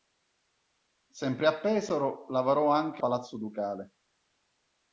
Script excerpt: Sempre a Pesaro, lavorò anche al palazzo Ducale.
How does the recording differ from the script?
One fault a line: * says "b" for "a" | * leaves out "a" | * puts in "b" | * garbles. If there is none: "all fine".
* leaves out "al"